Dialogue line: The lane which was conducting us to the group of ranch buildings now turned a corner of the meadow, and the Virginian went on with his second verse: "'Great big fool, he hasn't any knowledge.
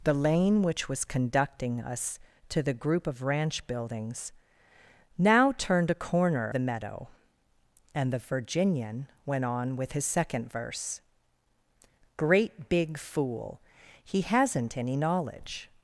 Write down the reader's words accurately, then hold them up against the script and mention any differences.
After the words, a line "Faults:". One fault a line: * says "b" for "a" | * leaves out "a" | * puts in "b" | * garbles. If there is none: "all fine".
The lane which was conducting us to the group of ranch buildings now turned a corner the meadow, and the Virginian went on with his second verse: "'Great big fool, he hasn't any knowledge.
Faults:
* leaves out "of"